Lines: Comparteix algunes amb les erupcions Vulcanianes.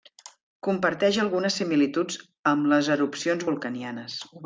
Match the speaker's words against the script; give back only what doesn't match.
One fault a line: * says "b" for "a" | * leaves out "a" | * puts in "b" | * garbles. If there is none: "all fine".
* puts in "similituds"